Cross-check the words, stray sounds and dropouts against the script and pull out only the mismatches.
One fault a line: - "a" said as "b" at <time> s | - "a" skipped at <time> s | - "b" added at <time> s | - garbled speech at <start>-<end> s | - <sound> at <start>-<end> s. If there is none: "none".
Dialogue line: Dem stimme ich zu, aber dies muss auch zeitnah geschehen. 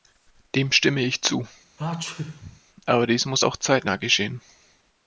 - sneeze at 1.8-2.6 s